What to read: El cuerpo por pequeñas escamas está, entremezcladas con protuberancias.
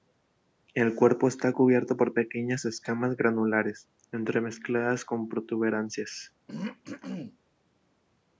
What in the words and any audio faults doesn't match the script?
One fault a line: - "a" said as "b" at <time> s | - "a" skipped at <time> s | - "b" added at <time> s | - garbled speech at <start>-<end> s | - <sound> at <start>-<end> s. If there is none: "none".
- "está cubierto" added at 1.3 s
- "está" said as "granulares" at 3.2 s
- throat clearing at 6.5-7.4 s